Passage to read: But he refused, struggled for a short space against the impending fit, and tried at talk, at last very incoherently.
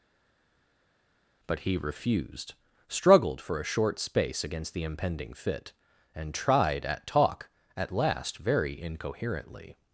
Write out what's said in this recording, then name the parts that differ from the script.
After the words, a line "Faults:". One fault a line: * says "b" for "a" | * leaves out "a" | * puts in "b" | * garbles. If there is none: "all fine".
But he refused, struggled for a short space against the impending fit, and tried at talk, at last very incoherently.
Faults:
all fine